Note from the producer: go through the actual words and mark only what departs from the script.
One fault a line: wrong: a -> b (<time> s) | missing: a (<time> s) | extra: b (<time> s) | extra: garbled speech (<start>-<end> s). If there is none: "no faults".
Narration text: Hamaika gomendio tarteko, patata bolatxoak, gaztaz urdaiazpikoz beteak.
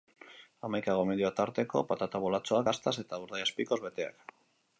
extra: eta (3.0 s)